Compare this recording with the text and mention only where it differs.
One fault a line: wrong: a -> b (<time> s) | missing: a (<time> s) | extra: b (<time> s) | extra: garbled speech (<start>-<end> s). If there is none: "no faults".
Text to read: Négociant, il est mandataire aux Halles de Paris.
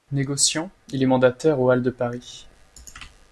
no faults